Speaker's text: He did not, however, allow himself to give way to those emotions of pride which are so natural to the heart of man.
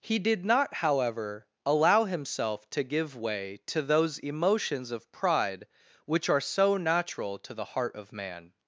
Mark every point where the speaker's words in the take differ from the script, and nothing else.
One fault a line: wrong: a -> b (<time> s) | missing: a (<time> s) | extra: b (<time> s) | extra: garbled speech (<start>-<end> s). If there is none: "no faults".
no faults